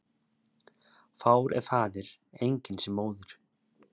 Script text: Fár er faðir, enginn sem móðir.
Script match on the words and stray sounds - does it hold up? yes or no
yes